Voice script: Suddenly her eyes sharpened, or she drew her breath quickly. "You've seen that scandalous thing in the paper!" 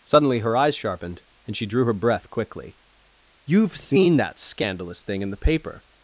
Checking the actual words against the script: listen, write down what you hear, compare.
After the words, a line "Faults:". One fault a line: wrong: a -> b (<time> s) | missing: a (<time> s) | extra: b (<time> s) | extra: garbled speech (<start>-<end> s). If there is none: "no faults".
Suddenly her eyes sharpened, and she drew her breath quickly. "You've seen that scandalous thing in the paper!"
Faults:
wrong: or -> and (1.4 s)